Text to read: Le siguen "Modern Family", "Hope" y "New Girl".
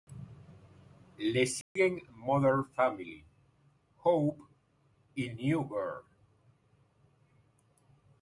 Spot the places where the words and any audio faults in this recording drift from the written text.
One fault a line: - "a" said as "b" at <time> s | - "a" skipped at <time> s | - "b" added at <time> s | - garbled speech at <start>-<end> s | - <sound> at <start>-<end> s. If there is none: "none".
- dropout at 1.6-1.8 s